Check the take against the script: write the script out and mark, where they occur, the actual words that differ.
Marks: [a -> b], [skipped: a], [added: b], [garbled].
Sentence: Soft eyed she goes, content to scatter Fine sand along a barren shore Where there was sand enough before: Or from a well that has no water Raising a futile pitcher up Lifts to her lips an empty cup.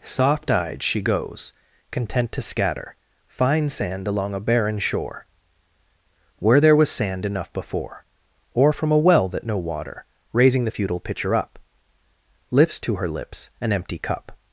Soft eyed she goes, content to scatter Fine sand along a barren shore Where there was sand enough before: Or from a well that [skipped: has] no water Raising [a -> the] futile pitcher up Lifts to her lips an empty cup.